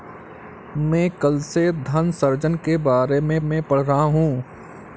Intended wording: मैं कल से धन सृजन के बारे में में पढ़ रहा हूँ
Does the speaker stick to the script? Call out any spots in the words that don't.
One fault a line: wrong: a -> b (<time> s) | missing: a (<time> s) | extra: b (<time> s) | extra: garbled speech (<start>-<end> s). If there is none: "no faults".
no faults